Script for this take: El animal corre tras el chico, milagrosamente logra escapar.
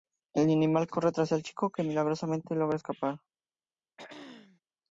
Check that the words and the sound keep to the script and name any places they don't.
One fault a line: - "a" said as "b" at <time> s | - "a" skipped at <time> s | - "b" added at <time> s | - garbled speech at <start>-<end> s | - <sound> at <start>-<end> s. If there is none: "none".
- "que" added at 1.7 s
- throat clearing at 4.0-4.6 s